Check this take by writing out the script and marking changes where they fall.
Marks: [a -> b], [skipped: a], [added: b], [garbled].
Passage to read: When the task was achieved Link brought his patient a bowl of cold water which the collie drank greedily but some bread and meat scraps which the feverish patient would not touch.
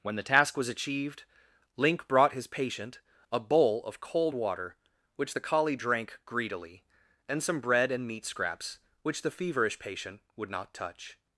When the task was achieved Link brought his patient a bowl of cold water which the collie drank greedily [but -> and] some bread and meat scraps which the feverish patient would not touch.